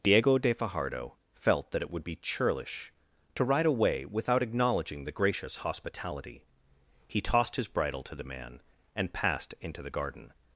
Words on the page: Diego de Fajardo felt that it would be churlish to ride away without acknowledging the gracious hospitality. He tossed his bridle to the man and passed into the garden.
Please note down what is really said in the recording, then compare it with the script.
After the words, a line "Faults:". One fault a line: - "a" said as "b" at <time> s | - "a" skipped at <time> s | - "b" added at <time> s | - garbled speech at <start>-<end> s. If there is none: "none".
Diego de Fajardo felt that it would be churlish to ride away without acknowledging the gracious hospitality. He tossed his bridle to the man and passed into the garden.
Faults:
none